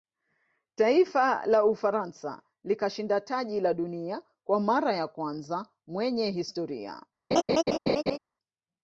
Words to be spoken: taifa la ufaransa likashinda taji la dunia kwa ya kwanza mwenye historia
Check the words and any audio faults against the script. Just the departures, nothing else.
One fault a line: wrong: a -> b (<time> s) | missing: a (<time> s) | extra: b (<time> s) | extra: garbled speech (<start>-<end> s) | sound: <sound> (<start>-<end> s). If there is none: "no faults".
extra: mara (4.6 s)
sound: laugh (7.3-8.2 s)